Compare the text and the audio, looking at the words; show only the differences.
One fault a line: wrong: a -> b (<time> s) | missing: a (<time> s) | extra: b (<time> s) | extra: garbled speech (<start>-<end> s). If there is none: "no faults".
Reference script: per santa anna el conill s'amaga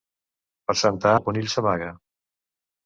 missing: anna (1.1 s)